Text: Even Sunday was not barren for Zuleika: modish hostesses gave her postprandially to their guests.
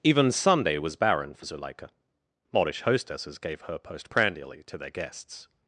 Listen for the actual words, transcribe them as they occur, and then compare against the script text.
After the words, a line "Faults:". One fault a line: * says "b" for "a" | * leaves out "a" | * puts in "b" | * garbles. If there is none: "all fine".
Even Sunday was barren for Zuleika: modish hostesses gave her postprandially to their guests.
Faults:
* leaves out "not"